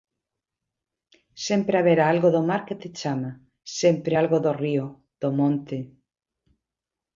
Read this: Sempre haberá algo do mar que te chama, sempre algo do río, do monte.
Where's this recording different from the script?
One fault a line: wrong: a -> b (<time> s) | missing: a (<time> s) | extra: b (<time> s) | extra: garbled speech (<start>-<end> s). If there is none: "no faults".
no faults